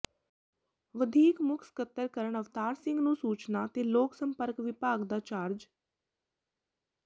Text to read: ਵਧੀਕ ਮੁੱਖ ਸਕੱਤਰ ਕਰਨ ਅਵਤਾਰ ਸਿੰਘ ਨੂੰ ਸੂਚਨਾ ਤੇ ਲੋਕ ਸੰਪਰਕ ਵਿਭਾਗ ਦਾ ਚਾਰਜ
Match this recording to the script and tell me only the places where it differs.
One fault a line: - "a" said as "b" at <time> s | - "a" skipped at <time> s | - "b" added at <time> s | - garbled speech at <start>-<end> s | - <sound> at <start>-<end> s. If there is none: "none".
none